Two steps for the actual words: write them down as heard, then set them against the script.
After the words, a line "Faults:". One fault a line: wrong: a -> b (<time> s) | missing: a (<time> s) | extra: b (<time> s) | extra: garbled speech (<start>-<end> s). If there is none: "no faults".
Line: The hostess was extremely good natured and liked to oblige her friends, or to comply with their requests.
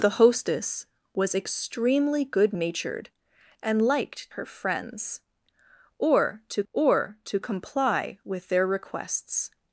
The hostess was extremely good natured and liked her friends, or to or to comply with their requests.
Faults:
wrong: to oblige her friends -> her friends or to (4.3 s)